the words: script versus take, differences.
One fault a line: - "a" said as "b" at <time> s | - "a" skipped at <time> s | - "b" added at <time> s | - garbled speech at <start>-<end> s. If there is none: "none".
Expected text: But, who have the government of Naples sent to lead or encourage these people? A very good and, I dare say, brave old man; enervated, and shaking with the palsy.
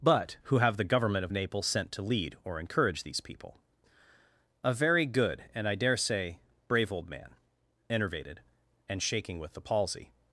none